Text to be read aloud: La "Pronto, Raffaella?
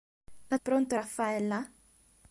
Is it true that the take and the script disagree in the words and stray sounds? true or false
false